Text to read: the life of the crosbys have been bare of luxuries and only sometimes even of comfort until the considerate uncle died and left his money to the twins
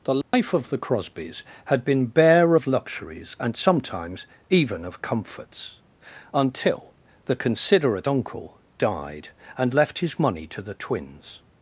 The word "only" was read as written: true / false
false